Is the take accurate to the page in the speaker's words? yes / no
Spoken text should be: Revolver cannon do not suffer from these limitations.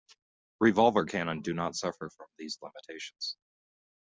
yes